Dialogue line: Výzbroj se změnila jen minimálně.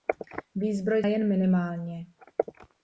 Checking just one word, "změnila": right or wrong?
wrong